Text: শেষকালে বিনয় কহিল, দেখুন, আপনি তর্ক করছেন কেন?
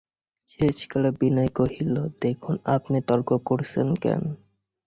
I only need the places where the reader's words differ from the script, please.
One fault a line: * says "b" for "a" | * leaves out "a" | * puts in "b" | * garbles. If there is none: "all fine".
all fine